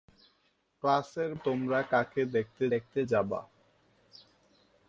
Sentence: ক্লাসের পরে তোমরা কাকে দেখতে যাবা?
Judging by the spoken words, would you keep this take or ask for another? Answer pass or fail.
fail